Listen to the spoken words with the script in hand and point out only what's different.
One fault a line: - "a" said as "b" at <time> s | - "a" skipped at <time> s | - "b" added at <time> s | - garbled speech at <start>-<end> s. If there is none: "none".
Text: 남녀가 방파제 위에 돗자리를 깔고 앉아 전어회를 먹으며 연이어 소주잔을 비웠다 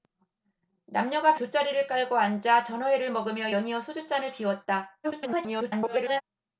- "방파제 위에" skipped at 1.4 s
- garbled speech at 5.0-6.2 s